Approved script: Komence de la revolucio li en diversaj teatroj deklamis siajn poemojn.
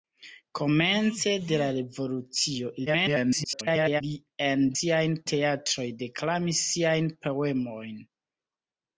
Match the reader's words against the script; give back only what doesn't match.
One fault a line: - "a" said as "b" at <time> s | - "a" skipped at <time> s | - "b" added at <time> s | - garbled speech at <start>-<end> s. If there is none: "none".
- garbled speech at 2.9-4.0 s
- "diversaj" said as "siajn" at 4.8 s